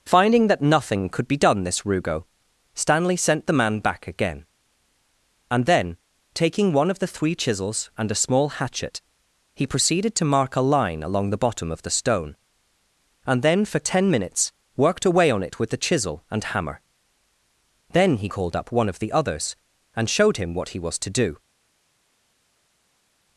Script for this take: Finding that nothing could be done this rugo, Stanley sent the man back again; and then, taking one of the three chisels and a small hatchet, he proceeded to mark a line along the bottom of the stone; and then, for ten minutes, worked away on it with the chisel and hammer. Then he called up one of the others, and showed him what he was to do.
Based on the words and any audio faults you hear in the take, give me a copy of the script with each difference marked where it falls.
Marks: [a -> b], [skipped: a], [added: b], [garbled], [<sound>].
Finding that nothing could be done this rugo, Stanley sent the man back again; and then, taking one of the three chisels and a small hatchet, he proceeded to mark a line along the bottom of the stone; and then, for ten minutes, worked away on it with the chisel and hammer. Then he called up one of the others, and showed him what he was to do.